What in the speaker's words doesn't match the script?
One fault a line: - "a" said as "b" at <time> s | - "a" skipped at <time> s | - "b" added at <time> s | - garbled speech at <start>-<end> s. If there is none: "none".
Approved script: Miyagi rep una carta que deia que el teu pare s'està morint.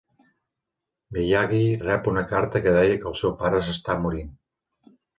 - "teu" said as "seu" at 3.2 s